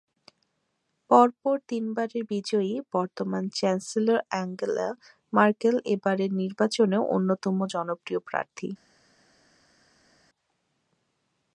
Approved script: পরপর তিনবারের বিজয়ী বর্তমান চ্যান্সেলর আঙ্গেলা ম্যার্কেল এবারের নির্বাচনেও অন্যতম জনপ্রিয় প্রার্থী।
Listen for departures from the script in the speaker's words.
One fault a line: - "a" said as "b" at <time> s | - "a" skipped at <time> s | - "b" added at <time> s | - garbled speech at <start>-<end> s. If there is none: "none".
none